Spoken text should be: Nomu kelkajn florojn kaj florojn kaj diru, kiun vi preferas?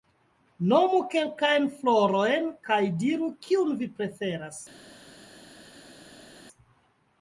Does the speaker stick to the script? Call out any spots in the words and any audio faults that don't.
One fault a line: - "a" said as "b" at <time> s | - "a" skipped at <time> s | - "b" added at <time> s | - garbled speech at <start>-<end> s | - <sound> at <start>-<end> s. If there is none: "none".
- "florojn kaj" skipped at 2.8 s